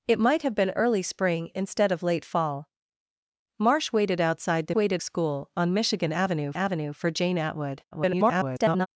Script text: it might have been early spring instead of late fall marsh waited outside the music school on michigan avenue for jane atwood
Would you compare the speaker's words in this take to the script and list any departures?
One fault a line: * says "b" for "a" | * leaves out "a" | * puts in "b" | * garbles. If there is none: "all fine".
* says "waited" for "music"
* puts in "avenue"
* garbles